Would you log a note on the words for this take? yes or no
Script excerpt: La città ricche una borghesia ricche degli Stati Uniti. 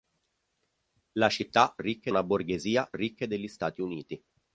no